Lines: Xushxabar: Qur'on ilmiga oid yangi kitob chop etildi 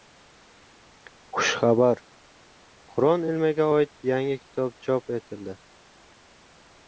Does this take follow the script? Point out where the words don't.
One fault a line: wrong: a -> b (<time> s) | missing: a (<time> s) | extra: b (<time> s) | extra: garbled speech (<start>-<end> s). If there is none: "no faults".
no faults